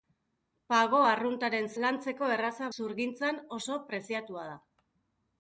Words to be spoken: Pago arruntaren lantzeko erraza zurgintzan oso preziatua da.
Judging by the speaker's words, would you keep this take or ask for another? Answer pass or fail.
pass